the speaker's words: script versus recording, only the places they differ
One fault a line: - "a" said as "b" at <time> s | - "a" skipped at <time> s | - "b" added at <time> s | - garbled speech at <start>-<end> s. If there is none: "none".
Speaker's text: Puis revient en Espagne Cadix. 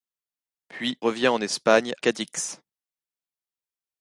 none